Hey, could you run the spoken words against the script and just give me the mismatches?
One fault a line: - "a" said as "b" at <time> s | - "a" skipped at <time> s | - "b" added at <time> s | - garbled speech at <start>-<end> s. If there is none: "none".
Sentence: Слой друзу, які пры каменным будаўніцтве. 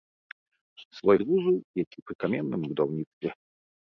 none